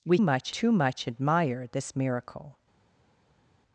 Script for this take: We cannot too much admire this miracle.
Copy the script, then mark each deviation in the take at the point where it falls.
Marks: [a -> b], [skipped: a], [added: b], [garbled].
We [cannot -> much] too much admire this miracle.